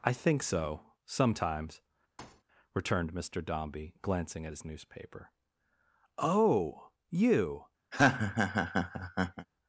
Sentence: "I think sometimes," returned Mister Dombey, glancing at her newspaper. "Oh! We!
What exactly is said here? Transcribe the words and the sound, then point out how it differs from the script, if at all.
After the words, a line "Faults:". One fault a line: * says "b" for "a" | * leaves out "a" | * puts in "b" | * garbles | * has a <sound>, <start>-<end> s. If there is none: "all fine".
"I think so, sometimes," returned Mister Dombey, glancing at his newspaper. "Oh! You!
Faults:
* puts in "so"
* has a thud, 2.2-2.4 s
* says "his" for "her"
* says "You" for "We"
* has a laugh, 7.9-9.5 s